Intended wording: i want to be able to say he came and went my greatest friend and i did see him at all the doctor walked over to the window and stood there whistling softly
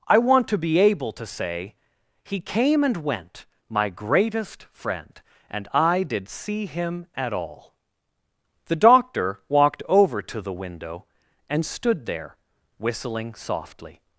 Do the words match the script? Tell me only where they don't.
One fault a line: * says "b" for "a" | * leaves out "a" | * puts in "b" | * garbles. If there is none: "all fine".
all fine